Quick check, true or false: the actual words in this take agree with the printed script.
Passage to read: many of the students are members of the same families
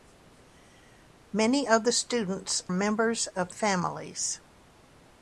false